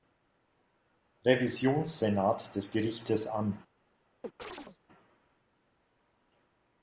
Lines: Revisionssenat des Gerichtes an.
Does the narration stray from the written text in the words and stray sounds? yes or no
yes